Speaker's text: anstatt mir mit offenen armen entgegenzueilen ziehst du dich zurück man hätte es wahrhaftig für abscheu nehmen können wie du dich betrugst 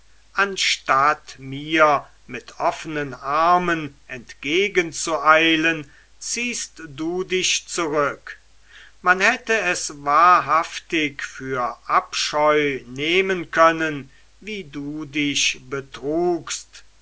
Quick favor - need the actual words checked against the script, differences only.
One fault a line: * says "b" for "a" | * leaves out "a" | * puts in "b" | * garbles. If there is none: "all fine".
all fine